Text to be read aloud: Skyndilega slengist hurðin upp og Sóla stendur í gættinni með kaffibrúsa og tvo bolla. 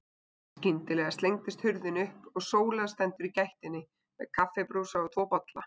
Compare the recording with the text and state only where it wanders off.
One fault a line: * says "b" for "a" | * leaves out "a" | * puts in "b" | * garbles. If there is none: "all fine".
all fine